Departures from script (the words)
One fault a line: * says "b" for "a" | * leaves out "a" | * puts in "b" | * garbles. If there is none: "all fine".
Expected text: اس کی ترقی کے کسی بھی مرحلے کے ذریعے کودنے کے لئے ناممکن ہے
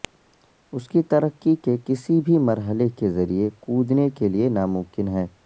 all fine